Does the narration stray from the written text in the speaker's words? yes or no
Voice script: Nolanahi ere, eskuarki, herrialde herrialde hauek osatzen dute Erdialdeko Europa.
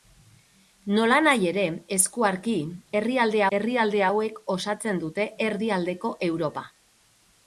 no